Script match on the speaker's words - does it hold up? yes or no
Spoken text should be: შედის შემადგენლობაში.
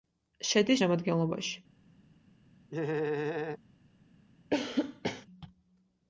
yes